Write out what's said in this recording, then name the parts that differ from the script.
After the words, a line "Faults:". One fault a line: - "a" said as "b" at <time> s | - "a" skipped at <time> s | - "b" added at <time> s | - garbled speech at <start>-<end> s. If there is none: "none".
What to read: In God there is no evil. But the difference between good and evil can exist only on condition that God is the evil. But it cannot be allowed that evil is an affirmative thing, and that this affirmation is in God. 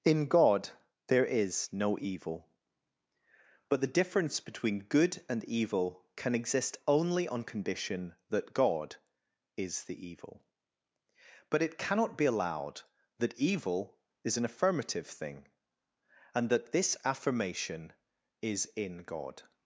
In God there is no evil. But the difference between good and evil can exist only on condition that God is the evil. But it cannot be allowed that evil is an affirmative thing, and that this affirmation is in God.
Faults:
none